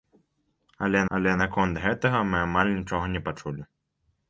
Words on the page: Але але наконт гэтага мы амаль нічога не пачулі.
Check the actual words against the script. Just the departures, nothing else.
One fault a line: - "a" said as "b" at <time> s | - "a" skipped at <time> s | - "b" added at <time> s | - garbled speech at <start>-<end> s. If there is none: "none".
none